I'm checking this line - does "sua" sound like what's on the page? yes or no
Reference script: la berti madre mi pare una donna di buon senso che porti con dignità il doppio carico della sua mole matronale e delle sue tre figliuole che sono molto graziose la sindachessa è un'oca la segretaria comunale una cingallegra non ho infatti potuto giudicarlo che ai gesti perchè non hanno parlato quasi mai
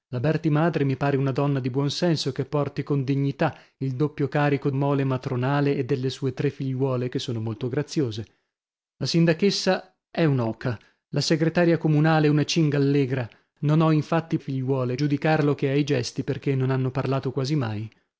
no